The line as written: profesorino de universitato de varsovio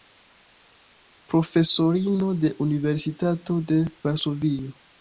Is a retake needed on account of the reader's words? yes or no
no